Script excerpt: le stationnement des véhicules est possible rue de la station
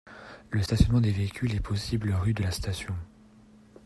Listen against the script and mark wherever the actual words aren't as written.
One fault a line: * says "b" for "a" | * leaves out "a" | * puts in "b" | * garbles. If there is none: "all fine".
all fine